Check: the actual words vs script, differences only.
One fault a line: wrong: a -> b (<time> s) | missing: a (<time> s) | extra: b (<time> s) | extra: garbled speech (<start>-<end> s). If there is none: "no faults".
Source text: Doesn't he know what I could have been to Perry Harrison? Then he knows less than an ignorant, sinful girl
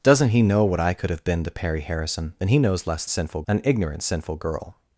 wrong: than -> sinful (3.1 s)